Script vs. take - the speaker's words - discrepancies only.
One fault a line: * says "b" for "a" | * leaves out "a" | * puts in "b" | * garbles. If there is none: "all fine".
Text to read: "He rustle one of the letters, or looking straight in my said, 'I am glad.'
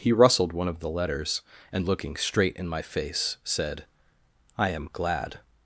* says "rustled" for "rustle"
* says "and" for "or"
* puts in "face"